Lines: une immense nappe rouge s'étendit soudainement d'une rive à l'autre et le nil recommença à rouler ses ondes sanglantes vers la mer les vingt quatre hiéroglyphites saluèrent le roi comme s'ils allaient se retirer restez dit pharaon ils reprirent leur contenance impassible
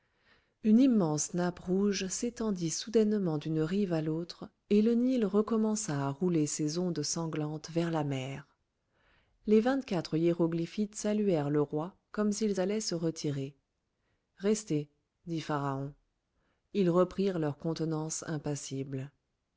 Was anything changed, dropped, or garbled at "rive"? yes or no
no